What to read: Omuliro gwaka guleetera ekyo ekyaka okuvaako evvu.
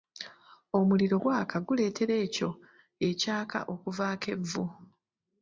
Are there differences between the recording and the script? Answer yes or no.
no